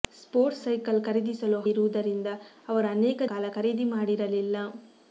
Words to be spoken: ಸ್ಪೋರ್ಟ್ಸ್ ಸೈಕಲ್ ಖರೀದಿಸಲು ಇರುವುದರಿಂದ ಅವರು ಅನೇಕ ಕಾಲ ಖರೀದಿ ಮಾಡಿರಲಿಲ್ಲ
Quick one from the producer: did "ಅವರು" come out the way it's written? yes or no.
yes